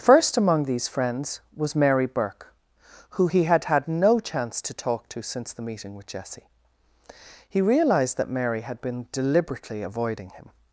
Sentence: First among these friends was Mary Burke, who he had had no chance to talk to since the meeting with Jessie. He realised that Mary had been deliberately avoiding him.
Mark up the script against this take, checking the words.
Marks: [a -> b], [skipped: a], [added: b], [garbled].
First among these friends was Mary Burke, who he had had no chance to talk to since the meeting with Jessie. He realised that Mary had been deliberately avoiding him.